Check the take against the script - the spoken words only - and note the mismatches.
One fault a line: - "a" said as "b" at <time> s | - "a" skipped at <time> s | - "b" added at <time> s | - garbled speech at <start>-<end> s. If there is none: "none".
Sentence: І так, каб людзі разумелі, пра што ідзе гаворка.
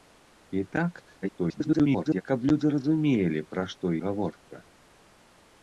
- garbled speech at 1.2-2.2 s
- "ідзе" skipped at 3.9 s